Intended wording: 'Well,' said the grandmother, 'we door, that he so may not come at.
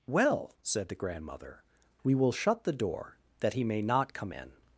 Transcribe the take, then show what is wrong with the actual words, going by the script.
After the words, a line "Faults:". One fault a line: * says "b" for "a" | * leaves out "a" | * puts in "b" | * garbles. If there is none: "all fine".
'Well,' said the grandmother, 'we will shut the door, that he may not come in.
Faults:
* puts in "will shut the"
* leaves out "so"
* says "in" for "at"